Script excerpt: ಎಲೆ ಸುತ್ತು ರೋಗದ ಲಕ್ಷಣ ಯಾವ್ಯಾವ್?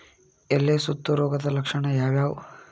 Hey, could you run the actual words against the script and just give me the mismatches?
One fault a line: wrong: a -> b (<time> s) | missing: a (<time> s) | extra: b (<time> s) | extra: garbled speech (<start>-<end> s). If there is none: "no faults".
no faults